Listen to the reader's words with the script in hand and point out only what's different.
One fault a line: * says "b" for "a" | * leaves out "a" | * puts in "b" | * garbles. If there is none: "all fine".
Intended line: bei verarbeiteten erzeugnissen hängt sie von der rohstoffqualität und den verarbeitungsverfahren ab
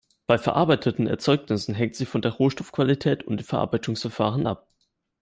all fine